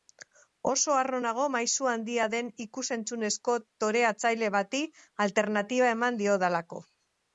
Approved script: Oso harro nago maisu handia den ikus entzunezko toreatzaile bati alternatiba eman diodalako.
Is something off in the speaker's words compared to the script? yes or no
no